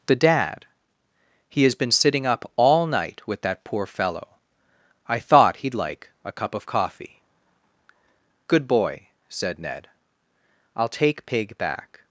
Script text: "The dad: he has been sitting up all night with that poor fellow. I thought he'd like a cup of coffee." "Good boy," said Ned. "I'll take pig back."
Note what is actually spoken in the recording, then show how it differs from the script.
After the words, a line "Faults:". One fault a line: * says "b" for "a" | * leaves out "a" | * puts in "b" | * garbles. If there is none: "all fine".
"The dad: he has been sitting up all night with that poor fellow. I thought he'd like a cup of coffee." "Good boy," said Ned. "I'll take pig back."
Faults:
all fine